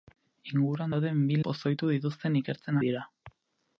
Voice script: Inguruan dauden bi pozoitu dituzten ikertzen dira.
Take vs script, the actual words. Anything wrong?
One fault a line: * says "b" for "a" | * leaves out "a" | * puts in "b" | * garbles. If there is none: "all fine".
all fine